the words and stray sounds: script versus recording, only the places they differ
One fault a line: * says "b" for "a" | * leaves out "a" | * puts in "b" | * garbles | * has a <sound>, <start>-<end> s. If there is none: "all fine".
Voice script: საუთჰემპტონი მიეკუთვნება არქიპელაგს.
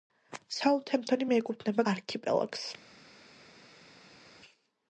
all fine